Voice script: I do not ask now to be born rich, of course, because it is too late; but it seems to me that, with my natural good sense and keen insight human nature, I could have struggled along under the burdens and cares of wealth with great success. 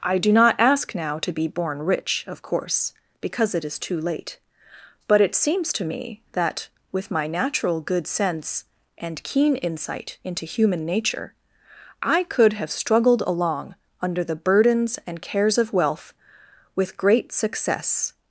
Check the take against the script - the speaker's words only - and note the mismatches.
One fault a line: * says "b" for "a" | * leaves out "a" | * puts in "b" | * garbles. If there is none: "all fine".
* puts in "into"